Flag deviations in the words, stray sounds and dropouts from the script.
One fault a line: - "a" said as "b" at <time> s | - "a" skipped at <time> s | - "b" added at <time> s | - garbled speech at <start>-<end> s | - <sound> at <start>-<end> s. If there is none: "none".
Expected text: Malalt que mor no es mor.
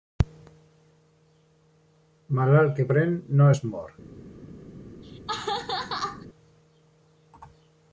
- "mor" said as "pren" at 2.9 s
- laugh at 5.0-6.3 s